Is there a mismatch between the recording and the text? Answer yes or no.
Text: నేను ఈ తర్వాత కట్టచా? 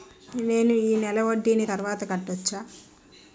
yes